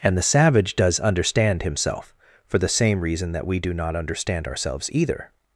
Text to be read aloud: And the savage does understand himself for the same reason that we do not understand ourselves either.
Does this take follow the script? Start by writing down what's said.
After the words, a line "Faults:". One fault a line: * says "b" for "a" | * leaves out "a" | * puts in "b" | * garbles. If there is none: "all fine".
And the savage does understand himself for the same reason that we do not understand ourselves either.
Faults:
all fine